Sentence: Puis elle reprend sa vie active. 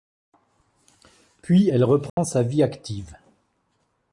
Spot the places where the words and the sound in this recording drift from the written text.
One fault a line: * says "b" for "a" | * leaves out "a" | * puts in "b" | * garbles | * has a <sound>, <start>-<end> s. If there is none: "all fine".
* has a dropout, 2.1-2.2 s